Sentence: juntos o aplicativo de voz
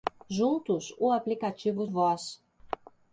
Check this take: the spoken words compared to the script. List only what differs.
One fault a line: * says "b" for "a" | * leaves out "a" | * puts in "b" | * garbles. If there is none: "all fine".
* leaves out "de"